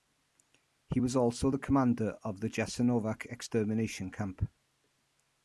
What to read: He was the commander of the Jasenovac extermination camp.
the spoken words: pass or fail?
fail